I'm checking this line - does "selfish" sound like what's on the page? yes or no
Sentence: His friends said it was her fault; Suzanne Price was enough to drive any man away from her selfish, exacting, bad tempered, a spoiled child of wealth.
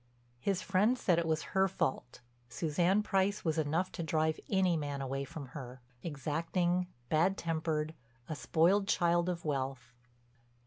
no